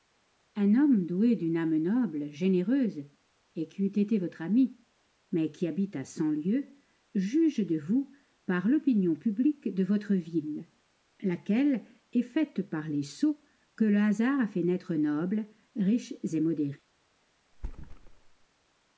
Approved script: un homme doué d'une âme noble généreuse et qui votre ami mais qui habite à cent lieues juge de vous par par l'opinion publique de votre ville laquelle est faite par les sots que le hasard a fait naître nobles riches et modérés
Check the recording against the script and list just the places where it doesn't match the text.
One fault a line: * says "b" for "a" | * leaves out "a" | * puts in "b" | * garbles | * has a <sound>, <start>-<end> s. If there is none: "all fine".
* puts in "eût été"
* leaves out "par"
* has a thud, 17.5-18.5 s